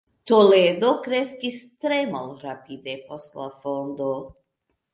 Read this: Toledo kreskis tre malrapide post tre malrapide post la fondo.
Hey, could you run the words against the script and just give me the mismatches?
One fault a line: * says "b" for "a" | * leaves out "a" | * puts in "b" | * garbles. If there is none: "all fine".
* leaves out "tre malrapide post"